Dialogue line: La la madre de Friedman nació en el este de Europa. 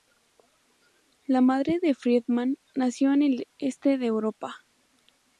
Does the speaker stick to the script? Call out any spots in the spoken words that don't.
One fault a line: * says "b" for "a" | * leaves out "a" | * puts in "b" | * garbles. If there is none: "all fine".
* leaves out "la"